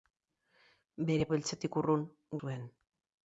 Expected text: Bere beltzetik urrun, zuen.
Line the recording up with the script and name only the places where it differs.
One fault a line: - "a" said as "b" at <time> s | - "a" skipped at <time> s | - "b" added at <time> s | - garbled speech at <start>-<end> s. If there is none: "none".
none